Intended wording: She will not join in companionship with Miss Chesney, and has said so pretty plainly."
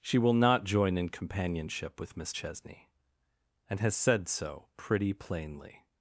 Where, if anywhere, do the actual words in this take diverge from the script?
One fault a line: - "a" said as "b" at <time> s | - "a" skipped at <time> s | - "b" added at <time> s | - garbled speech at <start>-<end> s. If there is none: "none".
none